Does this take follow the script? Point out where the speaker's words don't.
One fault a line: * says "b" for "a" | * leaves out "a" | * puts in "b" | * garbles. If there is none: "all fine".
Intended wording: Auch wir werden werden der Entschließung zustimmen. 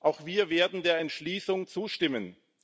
* leaves out "werden"